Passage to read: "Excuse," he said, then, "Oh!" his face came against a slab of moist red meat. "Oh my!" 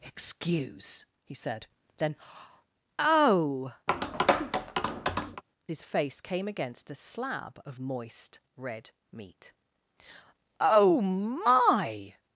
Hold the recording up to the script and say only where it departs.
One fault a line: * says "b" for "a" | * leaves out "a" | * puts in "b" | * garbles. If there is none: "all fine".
all fine